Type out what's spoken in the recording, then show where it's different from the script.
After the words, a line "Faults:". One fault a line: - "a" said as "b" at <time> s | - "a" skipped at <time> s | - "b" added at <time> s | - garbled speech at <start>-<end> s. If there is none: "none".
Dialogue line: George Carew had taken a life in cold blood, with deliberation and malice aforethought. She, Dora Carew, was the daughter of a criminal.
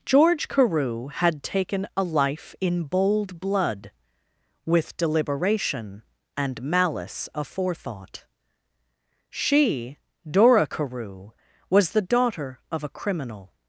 George Carew had taken a life in bold blood, with deliberation and malice aforethought. She, Dora Carew, was the daughter of a criminal.
Faults:
- "cold" said as "bold" at 2.8 s